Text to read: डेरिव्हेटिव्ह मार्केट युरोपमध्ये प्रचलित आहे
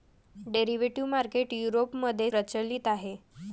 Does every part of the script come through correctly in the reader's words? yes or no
yes